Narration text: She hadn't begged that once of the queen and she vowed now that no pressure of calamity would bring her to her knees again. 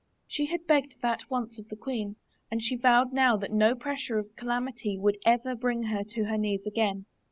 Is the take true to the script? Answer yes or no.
no